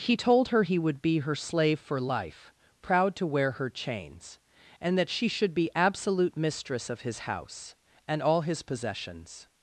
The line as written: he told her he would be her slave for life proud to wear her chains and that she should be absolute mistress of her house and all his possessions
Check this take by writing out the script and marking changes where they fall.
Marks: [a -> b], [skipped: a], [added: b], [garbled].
he told her he would be her slave for life proud to wear her chains and that she should be absolute mistress of [her -> his] house and all his possessions